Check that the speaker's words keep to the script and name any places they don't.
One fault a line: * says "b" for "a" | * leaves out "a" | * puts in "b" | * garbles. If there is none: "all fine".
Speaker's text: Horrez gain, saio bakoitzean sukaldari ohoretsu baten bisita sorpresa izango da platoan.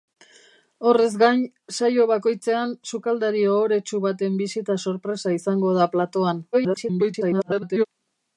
* garbles